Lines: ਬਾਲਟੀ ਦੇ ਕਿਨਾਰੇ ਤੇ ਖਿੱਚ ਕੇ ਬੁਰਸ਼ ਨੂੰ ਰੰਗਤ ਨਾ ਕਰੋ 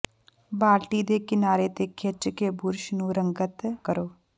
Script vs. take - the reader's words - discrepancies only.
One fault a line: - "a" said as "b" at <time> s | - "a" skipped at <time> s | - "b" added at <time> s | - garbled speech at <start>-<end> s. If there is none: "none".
- "ਨਾ" skipped at 3.6 s